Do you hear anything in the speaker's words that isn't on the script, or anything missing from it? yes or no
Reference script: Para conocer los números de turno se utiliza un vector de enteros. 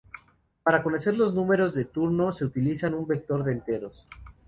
no